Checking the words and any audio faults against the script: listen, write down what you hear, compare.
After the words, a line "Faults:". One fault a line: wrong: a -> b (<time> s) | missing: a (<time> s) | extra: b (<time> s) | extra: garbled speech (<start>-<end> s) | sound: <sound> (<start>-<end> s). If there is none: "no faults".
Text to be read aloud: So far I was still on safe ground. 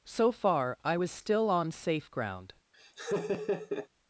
So far I was still on safe ground.
Faults:
sound: laugh (2.7-3.9 s)